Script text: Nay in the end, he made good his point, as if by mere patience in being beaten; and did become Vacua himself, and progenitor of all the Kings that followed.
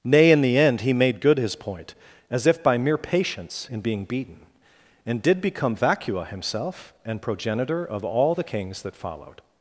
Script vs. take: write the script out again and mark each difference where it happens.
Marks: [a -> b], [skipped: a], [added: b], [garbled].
Nay in the end, he made good his point, as if by mere patience in being beaten; and did become Vacua himself, and progenitor of all the Kings that followed.